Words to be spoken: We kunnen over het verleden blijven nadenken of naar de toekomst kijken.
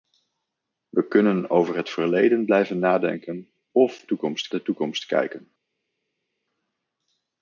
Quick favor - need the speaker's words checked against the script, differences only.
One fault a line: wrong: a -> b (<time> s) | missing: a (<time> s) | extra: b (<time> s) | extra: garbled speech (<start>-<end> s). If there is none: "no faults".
wrong: naar -> toekomst (4.0 s)